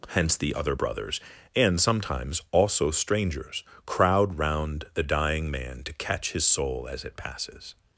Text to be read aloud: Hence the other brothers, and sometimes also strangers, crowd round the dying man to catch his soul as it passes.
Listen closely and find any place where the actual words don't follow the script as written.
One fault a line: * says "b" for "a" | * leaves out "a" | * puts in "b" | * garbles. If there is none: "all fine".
all fine